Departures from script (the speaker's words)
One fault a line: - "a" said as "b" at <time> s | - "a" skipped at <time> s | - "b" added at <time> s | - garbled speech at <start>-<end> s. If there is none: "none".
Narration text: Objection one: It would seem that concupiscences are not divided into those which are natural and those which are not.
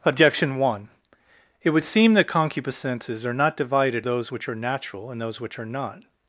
- "into" skipped at 4.1 s